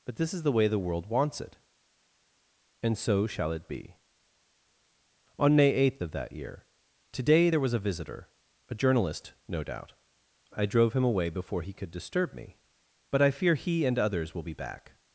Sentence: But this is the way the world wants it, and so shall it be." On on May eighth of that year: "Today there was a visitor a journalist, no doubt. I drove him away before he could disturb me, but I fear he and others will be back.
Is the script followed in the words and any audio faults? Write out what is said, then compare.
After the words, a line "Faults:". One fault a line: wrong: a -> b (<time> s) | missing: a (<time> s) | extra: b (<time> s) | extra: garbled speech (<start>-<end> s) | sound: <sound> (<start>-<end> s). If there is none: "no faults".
But this is the way the world wants it, and so shall it be." On May eighth of that year: "Today there was a visitor a journalist, no doubt. I drove him away before he could disturb me, but I fear he and others will be back.
Faults:
missing: on (5.6 s)